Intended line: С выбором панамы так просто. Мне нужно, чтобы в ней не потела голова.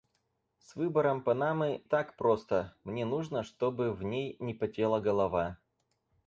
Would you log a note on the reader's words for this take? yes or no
no